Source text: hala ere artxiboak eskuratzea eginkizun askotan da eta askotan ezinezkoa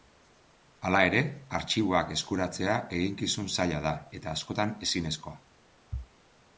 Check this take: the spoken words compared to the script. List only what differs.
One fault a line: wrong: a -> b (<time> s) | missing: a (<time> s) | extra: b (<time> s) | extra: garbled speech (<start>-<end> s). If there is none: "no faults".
wrong: askotan -> zaila (3.6 s)